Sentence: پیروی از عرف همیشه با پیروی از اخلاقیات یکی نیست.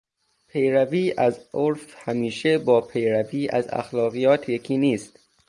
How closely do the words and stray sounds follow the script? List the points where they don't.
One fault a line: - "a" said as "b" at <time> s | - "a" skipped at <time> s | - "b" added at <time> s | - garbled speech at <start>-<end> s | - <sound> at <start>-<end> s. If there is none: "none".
none